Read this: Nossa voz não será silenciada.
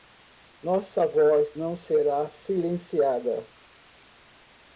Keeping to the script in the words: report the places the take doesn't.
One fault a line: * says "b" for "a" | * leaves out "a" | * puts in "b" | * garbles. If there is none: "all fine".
all fine